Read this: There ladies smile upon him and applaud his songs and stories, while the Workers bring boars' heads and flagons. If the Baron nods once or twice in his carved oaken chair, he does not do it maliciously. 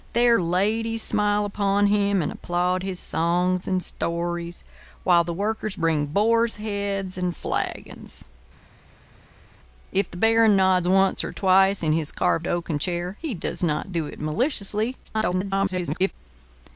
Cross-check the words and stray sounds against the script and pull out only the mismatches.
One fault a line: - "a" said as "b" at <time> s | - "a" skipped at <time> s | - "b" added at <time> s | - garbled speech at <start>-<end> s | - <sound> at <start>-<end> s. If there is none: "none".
- garbled speech at 15.0-16.1 s